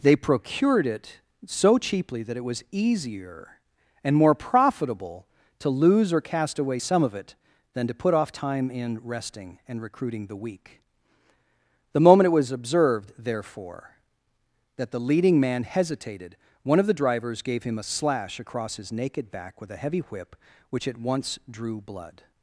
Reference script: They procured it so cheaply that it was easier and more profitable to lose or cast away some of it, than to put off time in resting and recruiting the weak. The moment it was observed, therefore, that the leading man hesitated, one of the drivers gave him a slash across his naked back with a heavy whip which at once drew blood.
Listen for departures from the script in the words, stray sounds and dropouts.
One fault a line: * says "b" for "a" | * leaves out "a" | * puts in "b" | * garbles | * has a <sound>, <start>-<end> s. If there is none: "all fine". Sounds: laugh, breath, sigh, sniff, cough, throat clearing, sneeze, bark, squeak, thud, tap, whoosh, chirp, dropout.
all fine